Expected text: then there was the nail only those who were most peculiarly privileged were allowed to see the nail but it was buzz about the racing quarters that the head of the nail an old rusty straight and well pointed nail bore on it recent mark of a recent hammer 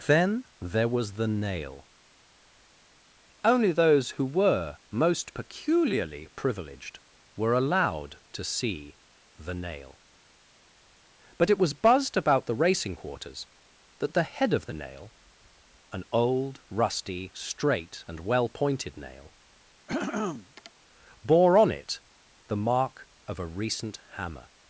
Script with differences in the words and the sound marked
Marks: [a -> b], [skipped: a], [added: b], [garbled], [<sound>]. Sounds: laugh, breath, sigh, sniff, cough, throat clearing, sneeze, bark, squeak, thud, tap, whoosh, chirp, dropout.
then there was the nail only those who were most peculiarly privileged were allowed to see the nail but it was [buzz -> buzzed] about the racing quarters that the head of the nail an old rusty straight and well pointed nail [throat clearing] bore on it [recent -> the] mark of a recent hammer